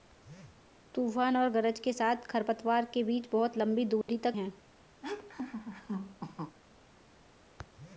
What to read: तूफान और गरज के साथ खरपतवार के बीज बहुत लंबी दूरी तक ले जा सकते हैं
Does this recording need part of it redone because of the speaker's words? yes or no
yes